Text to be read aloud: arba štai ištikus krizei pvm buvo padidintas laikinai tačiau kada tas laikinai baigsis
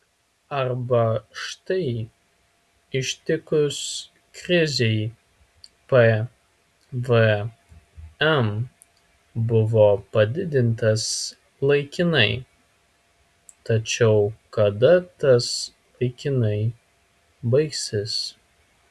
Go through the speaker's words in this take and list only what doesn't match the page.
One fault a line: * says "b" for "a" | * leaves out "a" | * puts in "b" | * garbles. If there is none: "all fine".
all fine